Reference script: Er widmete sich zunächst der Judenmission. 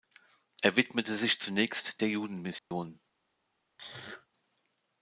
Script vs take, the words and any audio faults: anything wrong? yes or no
yes